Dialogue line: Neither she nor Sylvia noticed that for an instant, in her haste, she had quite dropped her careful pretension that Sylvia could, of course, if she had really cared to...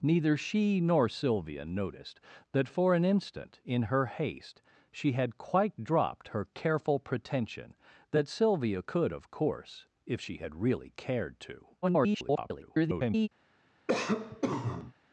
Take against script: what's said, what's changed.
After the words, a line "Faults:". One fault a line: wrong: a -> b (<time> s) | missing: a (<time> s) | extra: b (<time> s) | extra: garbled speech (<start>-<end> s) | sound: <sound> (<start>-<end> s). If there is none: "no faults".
Neither she nor Sylvia noticed that for an instant, in her haste, she had quite dropped her careful pretension that Sylvia could, of course, if she had really cared to... [garbled]
Faults:
extra: garbled speech (11.8-13.3 s)
sound: cough (13.9-14.9 s)